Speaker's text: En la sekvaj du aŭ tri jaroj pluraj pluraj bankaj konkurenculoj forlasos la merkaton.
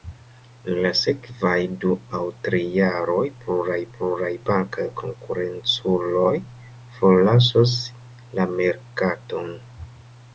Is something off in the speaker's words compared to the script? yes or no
no